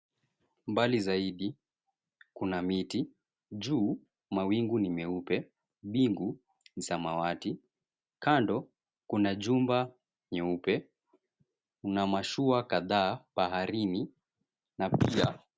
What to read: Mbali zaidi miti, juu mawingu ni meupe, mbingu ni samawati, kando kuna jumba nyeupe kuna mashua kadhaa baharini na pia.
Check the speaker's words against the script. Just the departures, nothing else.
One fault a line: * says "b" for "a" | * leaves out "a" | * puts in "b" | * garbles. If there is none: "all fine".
* puts in "kuna"